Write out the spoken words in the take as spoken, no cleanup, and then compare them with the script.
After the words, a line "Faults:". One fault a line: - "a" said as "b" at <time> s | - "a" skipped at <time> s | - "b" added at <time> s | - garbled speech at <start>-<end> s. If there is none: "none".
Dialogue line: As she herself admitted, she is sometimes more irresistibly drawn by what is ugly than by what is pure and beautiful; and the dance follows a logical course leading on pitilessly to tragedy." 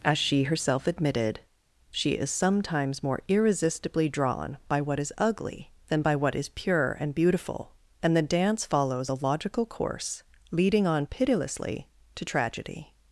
As she herself admitted, she is sometimes more irresistibly drawn by what is ugly than by what is pure and beautiful; and the dance follows a logical course leading on pitilessly to tragedy."
Faults:
none